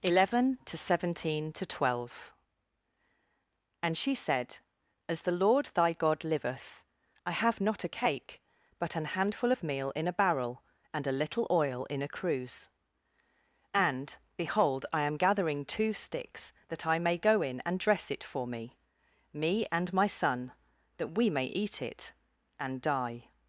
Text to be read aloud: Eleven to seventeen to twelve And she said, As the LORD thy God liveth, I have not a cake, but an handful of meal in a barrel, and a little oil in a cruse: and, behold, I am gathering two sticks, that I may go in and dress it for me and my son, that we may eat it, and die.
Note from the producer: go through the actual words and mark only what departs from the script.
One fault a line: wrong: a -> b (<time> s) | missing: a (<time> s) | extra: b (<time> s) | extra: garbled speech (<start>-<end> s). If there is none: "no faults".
extra: me (19.3 s)